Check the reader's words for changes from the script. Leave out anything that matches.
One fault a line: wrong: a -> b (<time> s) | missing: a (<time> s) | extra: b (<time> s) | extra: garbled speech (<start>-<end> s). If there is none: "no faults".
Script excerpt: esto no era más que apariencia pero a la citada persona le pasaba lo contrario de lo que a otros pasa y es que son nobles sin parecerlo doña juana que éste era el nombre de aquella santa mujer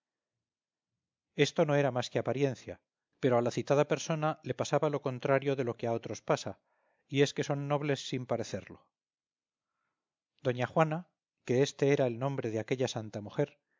no faults